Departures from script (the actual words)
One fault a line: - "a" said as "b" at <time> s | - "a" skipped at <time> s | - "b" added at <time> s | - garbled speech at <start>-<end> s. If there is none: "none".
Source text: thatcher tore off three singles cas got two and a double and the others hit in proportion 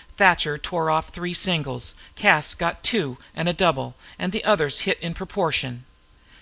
none